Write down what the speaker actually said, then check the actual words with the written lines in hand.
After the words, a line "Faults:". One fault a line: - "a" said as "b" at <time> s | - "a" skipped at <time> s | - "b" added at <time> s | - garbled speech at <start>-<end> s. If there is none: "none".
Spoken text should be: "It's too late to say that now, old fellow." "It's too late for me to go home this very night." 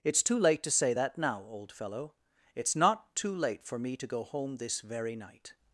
"It's too late to say that now, old fellow." "It's not too late for me to go home this very night."
Faults:
- "not" added at 2.8 s